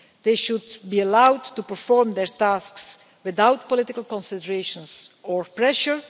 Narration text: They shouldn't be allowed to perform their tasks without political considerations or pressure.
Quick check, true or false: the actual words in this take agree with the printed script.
false